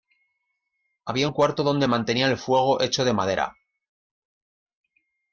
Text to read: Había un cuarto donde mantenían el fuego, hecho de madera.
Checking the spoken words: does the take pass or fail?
pass